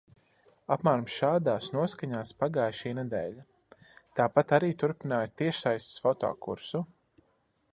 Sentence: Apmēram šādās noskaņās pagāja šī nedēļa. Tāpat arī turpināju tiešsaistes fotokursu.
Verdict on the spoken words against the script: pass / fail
pass